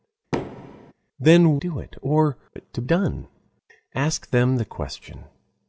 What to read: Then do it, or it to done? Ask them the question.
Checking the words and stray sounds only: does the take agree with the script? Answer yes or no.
no